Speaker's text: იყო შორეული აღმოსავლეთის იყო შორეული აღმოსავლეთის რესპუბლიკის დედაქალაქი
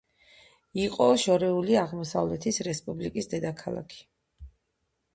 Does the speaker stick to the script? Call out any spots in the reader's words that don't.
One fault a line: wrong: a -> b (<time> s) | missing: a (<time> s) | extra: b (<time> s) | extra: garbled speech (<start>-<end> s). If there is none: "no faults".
missing: იყო შორეული აღმოსავლეთის (2.6 s)